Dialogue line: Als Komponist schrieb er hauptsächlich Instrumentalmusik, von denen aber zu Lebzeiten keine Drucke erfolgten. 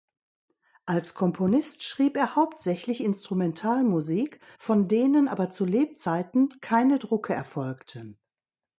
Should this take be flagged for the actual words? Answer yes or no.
no